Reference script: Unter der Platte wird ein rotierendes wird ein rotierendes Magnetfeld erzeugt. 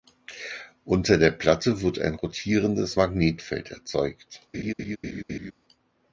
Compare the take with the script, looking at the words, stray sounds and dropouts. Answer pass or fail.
fail